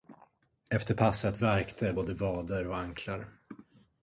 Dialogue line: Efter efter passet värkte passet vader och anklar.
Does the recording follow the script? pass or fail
fail